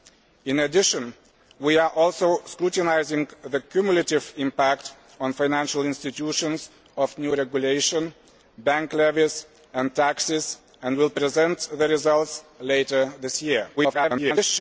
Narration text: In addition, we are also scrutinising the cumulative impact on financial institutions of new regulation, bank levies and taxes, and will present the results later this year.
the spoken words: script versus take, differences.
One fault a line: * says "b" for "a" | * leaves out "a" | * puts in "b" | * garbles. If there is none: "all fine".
* garbles